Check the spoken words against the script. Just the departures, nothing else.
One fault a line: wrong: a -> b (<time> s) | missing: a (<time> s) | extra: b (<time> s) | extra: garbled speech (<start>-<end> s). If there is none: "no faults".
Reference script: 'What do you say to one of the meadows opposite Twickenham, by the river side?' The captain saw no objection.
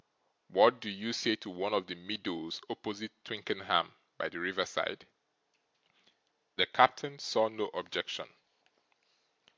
no faults